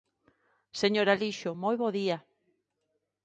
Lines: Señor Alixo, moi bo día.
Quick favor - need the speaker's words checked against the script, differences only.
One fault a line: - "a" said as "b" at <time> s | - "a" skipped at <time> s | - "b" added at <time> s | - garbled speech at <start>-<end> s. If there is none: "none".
none